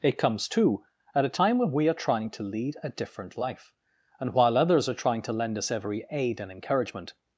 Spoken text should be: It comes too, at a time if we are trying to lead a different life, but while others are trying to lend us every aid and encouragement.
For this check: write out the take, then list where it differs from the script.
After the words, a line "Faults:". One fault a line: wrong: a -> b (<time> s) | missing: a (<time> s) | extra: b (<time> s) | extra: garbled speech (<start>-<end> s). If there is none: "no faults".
It comes too, at a time when we are trying to lead a different life, and while others are trying to lend us every aid and encouragement.
Faults:
wrong: if -> when (1.6 s)
wrong: but -> and (4.2 s)